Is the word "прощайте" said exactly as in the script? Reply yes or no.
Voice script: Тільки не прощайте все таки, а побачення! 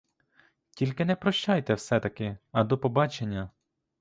yes